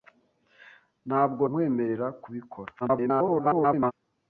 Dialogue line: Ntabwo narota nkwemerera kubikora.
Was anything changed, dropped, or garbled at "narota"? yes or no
yes